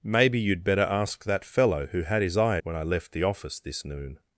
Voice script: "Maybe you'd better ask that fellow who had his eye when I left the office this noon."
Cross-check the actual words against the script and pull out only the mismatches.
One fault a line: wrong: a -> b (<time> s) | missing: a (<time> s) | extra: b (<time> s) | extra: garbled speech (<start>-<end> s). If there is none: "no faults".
no faults